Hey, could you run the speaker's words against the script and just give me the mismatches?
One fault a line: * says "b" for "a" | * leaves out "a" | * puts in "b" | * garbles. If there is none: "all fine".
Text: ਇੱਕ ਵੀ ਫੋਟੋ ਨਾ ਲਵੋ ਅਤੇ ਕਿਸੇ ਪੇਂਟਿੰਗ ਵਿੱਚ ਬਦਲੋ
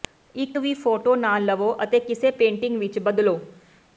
all fine